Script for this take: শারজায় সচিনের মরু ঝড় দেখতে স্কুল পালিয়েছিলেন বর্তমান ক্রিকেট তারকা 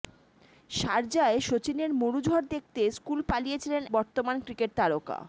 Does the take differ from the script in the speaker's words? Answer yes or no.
no